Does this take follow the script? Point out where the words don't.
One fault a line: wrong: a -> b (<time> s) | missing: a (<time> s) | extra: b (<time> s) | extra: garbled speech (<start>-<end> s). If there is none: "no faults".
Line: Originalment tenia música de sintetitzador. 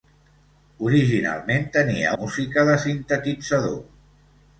no faults